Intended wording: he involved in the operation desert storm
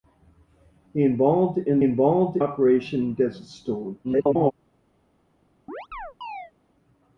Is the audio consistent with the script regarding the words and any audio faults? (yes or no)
no